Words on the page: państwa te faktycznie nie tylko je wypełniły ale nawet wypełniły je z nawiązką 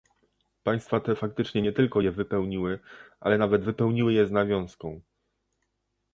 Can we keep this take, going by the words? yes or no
yes